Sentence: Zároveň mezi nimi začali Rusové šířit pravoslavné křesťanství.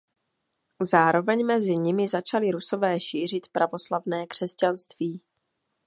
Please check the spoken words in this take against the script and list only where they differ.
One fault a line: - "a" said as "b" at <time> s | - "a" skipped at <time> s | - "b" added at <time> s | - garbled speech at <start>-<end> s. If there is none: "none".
none